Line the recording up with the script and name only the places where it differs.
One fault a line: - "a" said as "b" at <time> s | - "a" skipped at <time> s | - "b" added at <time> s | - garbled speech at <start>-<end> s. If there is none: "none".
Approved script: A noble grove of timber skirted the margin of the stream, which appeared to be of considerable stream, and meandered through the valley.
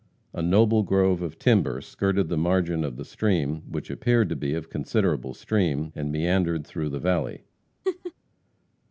none